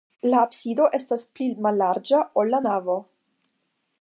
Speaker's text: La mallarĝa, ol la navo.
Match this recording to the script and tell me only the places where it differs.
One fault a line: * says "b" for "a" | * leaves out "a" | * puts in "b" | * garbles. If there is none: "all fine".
* puts in "absido estas pli"